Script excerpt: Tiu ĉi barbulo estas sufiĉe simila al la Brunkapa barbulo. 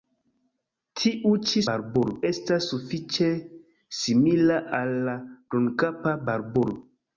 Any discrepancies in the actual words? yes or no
no